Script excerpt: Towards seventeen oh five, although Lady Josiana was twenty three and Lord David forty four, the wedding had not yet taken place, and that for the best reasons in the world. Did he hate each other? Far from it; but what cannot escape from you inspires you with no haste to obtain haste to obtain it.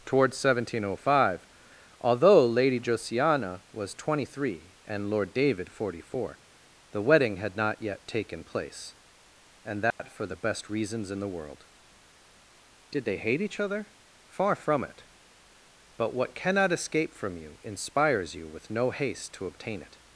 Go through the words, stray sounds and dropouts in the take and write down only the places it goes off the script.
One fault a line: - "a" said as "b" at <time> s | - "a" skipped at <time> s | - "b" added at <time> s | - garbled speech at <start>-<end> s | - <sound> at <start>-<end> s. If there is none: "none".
- dropout at 9.9-10.0 s
- "he" said as "they" at 13.1 s
- "haste to obtain" skipped at 19.8 s